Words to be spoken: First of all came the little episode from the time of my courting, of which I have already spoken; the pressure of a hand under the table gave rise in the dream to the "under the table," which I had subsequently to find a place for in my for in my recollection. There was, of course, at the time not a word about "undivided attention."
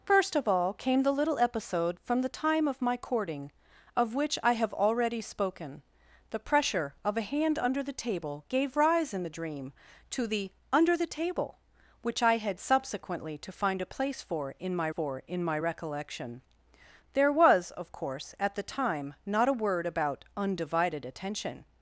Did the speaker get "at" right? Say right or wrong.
right